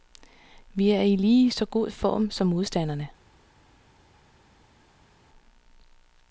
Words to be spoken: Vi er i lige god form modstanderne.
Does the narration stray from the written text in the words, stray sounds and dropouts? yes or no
yes